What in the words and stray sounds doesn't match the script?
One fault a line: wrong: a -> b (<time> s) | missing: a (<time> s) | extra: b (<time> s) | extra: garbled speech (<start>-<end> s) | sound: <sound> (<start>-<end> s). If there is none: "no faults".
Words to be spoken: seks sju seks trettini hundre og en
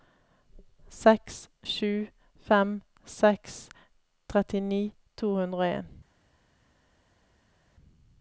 extra: fem (2.5 s)
extra: to (5.2 s)